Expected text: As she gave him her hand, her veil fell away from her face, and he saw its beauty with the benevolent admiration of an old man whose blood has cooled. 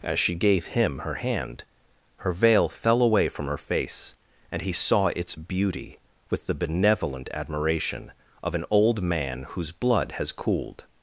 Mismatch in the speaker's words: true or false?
false